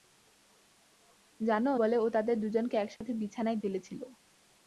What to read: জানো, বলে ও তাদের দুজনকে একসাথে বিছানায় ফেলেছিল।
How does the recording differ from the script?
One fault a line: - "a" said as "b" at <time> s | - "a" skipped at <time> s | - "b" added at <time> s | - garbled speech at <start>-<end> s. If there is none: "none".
none